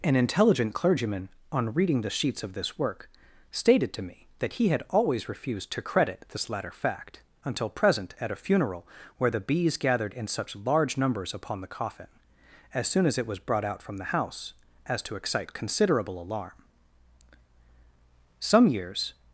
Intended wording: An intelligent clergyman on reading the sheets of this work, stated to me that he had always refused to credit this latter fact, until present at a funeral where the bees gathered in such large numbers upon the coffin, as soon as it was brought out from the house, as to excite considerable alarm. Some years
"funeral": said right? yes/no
yes